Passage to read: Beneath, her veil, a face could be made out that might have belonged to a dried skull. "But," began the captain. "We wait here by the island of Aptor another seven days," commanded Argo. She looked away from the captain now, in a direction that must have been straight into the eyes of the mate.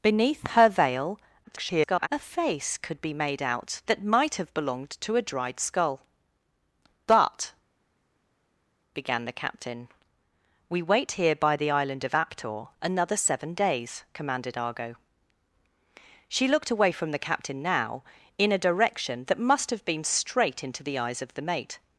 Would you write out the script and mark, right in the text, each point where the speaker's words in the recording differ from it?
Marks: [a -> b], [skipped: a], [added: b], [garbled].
Beneath, her veil, [garbled] a face could be made out that might have belonged to a dried skull. "But," began the captain. "We wait here by the island of Aptor another seven days," commanded Argo. She looked away from the captain now, in a direction that must have been straight into the eyes of the mate.